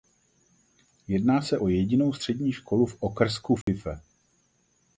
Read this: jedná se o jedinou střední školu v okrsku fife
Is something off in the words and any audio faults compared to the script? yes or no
yes